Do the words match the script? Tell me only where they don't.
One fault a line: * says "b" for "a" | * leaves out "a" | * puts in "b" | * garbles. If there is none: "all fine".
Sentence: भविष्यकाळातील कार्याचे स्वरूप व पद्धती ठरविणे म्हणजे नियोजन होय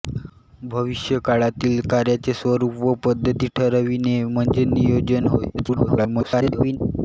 * garbles